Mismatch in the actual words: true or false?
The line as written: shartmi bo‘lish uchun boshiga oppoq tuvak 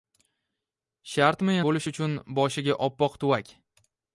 false